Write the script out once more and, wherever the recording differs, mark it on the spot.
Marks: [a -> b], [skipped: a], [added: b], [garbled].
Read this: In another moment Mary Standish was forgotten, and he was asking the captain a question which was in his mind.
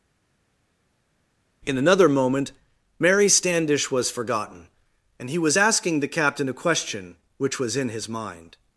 In another moment Mary Standish was forgotten, and he was asking the captain a question which was in his mind.